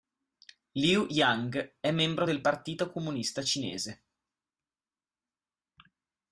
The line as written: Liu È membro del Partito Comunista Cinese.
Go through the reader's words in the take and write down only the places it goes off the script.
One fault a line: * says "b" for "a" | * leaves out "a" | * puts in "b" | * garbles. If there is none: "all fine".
* puts in "Yang"